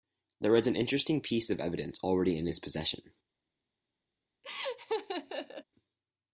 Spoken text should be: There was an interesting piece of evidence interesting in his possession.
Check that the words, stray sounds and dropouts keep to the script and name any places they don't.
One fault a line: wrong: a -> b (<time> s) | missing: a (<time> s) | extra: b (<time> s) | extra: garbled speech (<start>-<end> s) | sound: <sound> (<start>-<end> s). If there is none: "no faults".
wrong: interesting -> already (2.0 s)
sound: laugh (4.4-5.6 s)